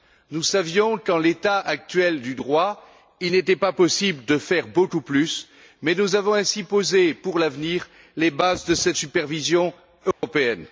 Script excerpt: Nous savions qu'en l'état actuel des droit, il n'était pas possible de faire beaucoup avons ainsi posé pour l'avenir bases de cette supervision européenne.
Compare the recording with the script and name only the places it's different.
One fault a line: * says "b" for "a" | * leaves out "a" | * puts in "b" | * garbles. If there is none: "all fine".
* says "du" for "des"
* puts in "plus mais nous"
* puts in "les"